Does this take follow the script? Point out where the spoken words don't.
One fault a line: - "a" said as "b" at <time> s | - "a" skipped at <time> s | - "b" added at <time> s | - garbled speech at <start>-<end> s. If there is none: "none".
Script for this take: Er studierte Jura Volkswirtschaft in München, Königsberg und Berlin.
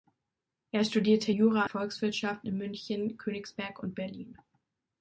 none